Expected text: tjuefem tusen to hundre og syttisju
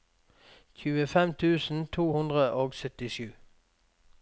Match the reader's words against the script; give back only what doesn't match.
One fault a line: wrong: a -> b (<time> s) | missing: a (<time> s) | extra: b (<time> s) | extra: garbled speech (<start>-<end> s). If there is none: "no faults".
no faults